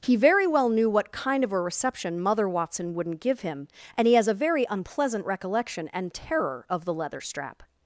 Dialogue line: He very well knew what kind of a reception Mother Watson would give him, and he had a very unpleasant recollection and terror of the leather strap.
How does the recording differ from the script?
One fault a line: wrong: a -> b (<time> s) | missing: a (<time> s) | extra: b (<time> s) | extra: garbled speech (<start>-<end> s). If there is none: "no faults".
wrong: would -> wouldn't (3.0 s)
wrong: had -> has (4.2 s)